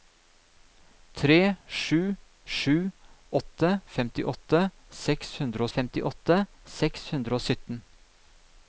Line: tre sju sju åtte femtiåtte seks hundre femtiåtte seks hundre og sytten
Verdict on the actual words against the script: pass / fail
pass